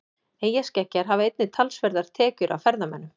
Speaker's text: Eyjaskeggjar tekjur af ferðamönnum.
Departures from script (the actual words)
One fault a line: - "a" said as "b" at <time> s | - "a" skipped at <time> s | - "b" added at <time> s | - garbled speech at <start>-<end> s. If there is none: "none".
- "hafa einnig talsverðar" added at 1.1 s